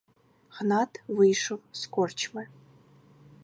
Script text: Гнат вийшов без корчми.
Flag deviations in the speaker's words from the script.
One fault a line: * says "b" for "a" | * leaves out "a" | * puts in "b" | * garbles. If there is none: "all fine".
* says "з" for "без"